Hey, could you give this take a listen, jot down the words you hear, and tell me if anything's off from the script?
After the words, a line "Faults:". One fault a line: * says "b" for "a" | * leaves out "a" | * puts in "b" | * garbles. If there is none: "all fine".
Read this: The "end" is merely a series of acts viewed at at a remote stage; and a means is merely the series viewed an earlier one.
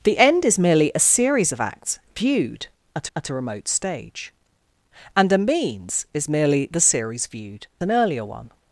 The "end" is merely a series of acts viewed at at a remote stage; and a means is merely the series viewed an earlier one.
Faults:
all fine